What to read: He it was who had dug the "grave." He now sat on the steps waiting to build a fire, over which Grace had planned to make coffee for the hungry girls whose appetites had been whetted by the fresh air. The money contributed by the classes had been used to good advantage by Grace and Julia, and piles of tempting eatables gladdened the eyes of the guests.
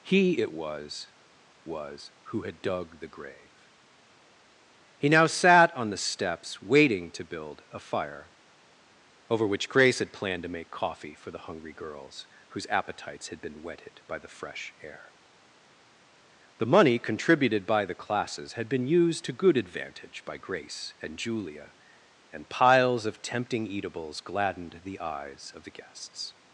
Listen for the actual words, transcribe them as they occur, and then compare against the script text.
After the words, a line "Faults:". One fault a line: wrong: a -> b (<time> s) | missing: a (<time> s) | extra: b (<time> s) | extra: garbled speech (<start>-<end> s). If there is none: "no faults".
He it was was who had dug the "grave." He now sat on the steps waiting to build a fire, over which Grace had planned to make coffee for the hungry girls whose appetites had been whetted by the fresh air. The money contributed by the classes had been used to good advantage by Grace and Julia, and piles of tempting eatables gladdened the eyes of the guests.
Faults:
extra: was (1.6 s)